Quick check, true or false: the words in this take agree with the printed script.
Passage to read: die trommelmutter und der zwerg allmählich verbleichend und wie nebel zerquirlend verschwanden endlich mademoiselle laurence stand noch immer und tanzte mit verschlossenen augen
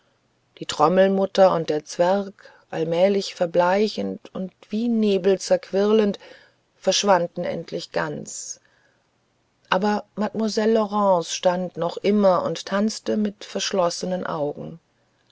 false